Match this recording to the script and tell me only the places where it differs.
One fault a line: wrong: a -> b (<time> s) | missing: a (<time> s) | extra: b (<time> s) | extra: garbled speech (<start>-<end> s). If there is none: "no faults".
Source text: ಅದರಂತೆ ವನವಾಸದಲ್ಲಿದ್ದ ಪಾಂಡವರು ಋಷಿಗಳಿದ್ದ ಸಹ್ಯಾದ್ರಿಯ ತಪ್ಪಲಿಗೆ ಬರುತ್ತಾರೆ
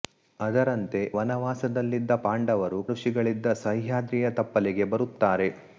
no faults